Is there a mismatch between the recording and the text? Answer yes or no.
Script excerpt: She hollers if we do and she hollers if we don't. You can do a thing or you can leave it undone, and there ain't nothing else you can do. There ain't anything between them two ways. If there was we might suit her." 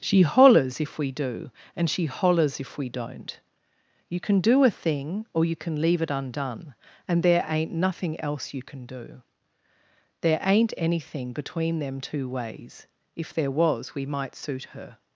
no